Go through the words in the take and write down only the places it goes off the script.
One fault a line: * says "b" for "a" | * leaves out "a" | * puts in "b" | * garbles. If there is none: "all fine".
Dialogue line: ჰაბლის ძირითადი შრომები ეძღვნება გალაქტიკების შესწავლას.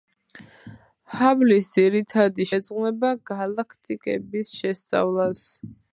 * leaves out "შრომები"